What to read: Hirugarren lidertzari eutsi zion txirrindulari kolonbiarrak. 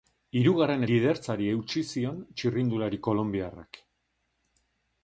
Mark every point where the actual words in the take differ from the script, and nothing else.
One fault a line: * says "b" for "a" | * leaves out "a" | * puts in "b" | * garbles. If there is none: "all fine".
all fine